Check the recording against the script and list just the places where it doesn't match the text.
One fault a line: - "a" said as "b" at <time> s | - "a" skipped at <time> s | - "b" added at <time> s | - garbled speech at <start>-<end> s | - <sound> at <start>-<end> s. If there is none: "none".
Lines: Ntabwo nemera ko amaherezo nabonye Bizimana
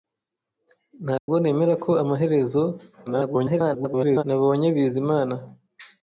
- dropout at 1.2-1.3 s
- garbled speech at 3.1-4.2 s